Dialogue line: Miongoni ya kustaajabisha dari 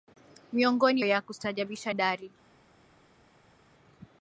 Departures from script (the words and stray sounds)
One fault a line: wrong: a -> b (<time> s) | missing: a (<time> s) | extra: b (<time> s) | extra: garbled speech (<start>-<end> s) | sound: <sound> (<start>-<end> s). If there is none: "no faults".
no faults